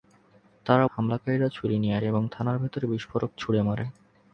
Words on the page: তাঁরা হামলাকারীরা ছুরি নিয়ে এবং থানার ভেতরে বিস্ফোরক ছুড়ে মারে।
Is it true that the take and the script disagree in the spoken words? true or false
false